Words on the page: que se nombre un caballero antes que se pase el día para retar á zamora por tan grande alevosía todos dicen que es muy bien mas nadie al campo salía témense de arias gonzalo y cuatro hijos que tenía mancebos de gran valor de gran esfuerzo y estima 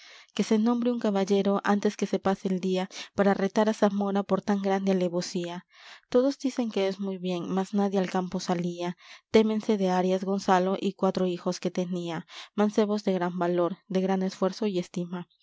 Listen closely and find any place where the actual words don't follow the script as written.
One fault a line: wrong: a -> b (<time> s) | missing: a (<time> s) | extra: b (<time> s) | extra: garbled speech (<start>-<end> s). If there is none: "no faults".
no faults